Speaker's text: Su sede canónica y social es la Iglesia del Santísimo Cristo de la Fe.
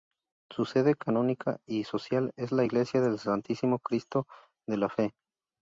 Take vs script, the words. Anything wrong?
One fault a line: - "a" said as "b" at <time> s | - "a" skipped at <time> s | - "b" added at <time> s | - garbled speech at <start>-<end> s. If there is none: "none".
none